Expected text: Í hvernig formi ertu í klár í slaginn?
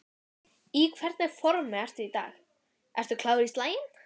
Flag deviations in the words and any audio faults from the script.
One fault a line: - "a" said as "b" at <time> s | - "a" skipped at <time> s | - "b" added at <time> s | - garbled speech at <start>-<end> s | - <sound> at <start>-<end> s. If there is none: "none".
- "dag ertu" added at 2.2 s